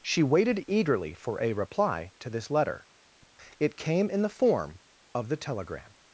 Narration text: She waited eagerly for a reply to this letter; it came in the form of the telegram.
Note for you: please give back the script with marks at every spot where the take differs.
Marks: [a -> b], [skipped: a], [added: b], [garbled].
She waited eagerly for a reply to this letter; it came in the form of the telegram.